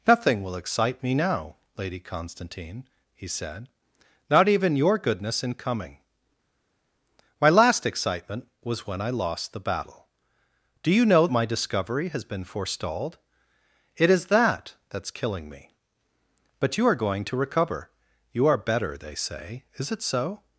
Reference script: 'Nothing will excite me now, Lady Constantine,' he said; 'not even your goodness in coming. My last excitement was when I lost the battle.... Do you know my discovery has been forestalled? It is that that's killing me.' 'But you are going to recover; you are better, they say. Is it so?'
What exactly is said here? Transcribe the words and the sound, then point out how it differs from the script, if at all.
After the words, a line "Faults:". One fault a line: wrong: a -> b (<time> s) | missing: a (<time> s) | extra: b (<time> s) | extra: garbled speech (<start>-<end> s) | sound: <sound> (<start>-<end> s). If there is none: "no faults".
'Nothing will excite me now, Lady Constantine,' he said; 'not even your goodness in coming. My last excitement was when I lost the battle.... Do you know my discovery has been forestalled? It is that that's killing me.' 'But you are going to recover; you are better, they say. Is it so?'
Faults:
no faults